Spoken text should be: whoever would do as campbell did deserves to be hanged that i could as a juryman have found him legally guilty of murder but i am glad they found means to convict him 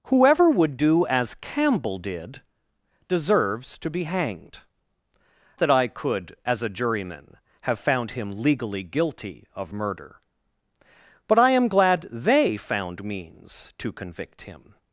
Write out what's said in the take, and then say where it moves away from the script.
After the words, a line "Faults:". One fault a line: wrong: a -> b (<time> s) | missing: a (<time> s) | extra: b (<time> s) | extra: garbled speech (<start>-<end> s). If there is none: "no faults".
whoever would do as campbell did deserves to be hanged that i could as a juryman have found him legally guilty of murder but i am glad they found means to convict him
Faults:
no faults